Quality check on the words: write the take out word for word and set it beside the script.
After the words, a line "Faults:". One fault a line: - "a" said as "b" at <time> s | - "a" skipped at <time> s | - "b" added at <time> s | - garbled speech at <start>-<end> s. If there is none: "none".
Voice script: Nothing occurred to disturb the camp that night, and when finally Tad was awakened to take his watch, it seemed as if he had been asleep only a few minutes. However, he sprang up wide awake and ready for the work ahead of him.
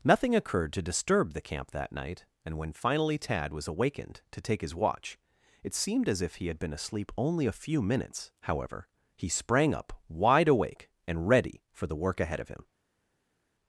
Nothing occurred to disturb the camp that night, and when finally Tad was awakened to take his watch, it seemed as if he had been asleep only a few minutes. However, he sprang up wide awake and ready for the work ahead of him.
Faults:
none